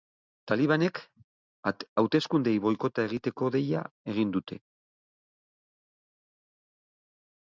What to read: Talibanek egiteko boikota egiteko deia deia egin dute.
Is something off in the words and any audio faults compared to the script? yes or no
yes